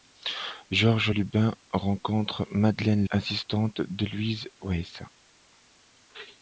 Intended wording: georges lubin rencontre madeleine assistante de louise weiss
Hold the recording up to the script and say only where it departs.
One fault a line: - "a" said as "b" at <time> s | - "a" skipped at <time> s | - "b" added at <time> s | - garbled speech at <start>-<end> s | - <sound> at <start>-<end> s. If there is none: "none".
none